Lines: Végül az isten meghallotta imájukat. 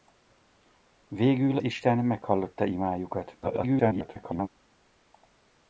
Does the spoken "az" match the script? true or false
false